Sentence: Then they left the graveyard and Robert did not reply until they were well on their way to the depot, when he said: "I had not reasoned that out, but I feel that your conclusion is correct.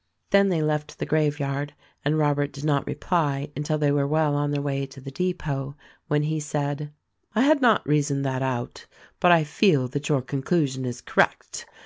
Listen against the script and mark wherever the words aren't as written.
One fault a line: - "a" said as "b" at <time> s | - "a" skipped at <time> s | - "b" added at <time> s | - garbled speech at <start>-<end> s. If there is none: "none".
none